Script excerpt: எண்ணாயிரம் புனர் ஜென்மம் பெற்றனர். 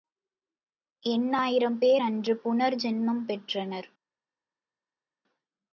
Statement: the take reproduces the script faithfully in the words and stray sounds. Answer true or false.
false